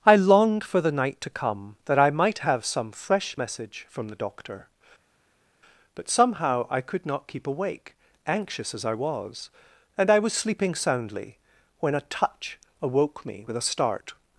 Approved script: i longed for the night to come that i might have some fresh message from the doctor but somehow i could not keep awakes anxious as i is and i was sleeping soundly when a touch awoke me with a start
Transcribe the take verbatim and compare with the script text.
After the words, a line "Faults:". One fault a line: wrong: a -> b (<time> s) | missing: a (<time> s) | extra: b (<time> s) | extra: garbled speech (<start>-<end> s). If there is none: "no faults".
i longed for the night to come that i might have some fresh message from the doctor but somehow i could not keep awake anxious as i was and i was sleeping soundly when a touch awoke me with a start
Faults:
wrong: awakes -> awake (7.5 s)
wrong: is -> was (8.9 s)